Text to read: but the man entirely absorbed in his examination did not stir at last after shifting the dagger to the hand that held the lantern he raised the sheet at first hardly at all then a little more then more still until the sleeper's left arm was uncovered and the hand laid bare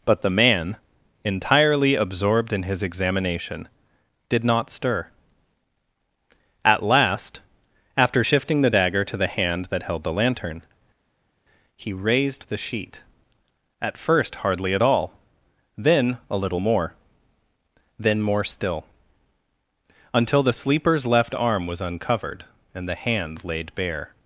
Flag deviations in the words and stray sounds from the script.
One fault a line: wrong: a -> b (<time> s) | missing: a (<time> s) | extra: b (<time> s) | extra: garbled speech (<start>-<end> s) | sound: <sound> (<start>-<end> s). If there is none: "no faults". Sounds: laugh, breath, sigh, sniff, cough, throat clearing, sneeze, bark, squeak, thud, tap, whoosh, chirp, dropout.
no faults